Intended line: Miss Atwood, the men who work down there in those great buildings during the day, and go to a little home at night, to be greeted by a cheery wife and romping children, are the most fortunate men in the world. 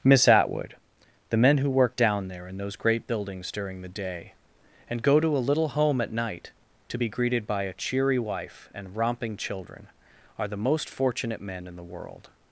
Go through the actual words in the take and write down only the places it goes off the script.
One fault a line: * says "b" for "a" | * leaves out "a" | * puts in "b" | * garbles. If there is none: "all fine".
all fine